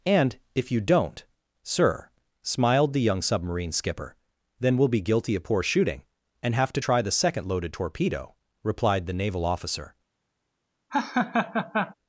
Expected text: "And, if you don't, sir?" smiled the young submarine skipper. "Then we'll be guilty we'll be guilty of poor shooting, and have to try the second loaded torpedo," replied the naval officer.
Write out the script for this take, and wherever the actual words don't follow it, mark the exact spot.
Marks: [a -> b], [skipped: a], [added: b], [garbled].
"And, if you don't, sir?" smiled the young submarine skipper. "Then we'll be guilty [skipped: we'll be guilty] of poor shooting, and have to try the second loaded torpedo," replied the naval officer.